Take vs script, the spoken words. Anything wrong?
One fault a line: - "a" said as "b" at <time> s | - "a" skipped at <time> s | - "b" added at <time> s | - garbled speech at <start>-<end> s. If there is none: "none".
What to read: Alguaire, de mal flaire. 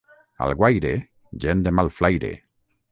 - "gent" added at 1.4 s